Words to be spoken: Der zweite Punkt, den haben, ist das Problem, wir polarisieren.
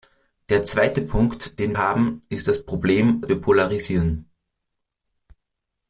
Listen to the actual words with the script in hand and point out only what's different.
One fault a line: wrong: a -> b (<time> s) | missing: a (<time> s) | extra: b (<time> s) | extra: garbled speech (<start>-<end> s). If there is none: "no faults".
no faults